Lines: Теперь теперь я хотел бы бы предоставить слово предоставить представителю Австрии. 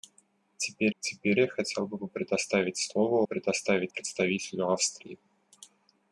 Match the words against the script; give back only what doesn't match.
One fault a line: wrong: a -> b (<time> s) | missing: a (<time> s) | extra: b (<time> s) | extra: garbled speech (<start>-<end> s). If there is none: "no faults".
no faults